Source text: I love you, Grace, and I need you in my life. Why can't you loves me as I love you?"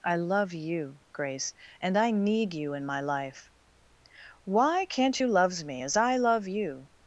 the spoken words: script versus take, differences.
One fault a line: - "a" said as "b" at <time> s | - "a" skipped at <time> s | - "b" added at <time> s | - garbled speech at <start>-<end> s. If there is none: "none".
none